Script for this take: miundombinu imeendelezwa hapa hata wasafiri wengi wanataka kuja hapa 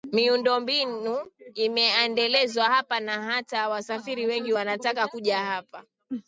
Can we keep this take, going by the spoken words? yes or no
no